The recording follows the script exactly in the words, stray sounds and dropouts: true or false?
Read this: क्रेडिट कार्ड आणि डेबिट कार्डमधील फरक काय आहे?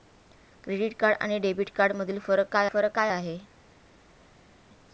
false